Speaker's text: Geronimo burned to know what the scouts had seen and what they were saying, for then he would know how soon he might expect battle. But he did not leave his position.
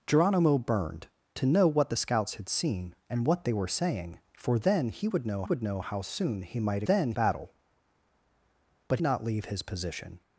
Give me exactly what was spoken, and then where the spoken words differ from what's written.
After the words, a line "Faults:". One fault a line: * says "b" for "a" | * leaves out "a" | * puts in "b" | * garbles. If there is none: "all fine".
Geronimo burned to know what the scouts had seen and what they were saying, for then he would know would know how soon he might then battle. But not leave his position.
Faults:
* puts in "would know"
* says "then" for "expect"
* leaves out "he did"